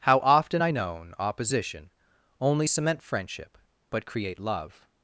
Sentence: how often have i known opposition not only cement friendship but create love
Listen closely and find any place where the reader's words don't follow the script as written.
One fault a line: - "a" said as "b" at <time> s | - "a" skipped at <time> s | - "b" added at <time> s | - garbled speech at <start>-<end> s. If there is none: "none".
- "have" skipped at 0.6 s
- "not" skipped at 1.9 s